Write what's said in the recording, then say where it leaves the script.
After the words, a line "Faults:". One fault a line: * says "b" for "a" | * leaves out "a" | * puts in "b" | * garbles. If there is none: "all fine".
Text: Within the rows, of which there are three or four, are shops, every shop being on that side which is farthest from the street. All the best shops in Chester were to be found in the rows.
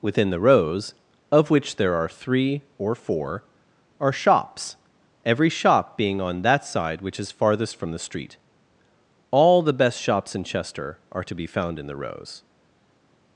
Within the rows, of which there are three or four, are shops, every shop being on that side which is farthest from the street. All the best shops in Chester are to be found in the rows.
Faults:
* says "are" for "were"